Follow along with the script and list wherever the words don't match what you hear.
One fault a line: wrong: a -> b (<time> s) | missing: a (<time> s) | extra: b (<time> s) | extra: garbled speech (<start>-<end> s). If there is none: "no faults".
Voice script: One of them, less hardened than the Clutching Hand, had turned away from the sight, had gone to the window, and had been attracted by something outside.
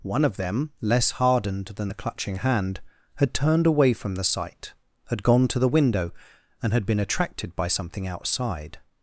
no faults